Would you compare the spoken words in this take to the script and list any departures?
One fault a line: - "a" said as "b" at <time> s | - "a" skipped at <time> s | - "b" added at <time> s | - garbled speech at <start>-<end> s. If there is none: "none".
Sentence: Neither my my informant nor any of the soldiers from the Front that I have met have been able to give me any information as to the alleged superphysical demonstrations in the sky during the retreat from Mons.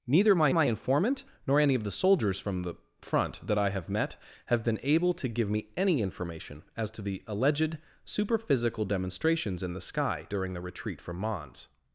none